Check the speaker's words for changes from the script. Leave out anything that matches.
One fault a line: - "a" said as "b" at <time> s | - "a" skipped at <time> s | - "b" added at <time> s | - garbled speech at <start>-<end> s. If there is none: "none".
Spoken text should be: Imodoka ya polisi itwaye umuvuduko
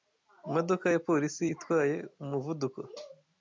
none